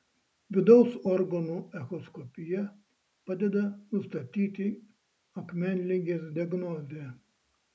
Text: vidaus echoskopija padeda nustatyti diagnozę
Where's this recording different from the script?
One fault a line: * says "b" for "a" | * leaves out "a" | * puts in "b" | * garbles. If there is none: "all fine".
* puts in "organų"
* puts in "akmenligės"